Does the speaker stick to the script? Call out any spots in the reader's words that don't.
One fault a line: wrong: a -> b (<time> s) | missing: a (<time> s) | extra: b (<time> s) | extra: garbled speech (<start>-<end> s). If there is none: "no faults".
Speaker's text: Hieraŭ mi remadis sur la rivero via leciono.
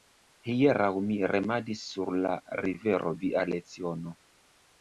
no faults